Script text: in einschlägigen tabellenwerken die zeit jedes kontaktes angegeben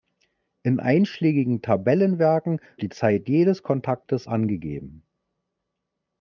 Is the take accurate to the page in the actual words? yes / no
yes